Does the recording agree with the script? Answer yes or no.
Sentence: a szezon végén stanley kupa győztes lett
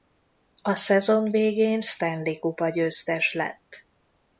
yes